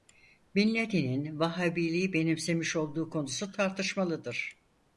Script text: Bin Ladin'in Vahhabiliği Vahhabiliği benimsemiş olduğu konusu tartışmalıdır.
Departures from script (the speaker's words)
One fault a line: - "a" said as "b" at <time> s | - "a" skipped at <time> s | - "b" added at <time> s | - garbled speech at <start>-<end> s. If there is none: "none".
- "Vahhabiliği" skipped at 2.1 s